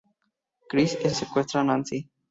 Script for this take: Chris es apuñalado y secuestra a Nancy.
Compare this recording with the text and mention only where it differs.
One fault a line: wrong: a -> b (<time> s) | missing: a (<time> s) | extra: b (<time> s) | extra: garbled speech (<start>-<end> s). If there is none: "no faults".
missing: apuñalado (1.1 s)